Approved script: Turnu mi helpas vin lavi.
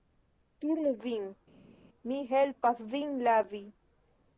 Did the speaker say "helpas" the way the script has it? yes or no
yes